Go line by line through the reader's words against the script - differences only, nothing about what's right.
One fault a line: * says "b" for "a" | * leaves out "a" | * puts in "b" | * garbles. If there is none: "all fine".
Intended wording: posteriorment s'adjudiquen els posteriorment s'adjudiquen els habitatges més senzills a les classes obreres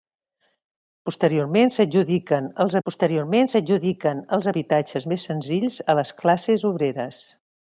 all fine